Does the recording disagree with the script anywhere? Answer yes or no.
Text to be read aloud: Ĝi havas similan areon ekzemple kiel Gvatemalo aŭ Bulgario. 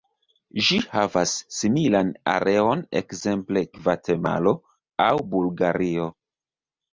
yes